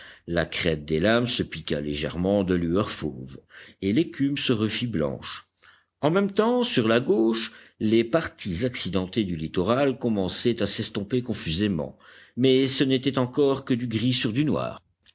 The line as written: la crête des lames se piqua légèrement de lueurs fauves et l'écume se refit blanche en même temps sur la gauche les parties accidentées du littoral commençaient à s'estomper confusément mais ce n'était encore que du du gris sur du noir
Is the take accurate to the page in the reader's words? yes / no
no